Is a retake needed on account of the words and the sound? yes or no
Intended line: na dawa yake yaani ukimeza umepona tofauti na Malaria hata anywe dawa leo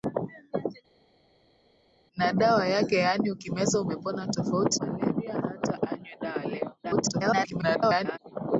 yes